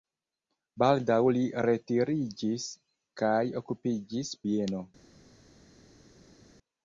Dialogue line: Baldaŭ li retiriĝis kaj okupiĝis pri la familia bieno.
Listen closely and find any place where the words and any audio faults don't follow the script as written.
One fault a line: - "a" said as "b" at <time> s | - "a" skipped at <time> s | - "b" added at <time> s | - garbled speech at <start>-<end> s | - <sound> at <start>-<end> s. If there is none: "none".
- "pri la familia" skipped at 4.3 s